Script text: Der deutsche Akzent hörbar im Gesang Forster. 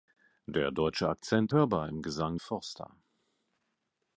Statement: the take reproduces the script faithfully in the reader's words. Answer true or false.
true